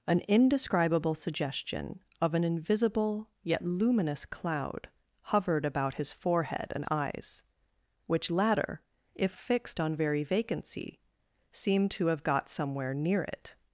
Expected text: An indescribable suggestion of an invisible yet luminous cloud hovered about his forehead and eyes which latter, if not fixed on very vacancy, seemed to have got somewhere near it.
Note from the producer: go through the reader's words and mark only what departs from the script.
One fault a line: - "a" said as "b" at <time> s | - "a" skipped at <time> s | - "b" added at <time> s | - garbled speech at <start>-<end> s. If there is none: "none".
- "not" skipped at 9.4 s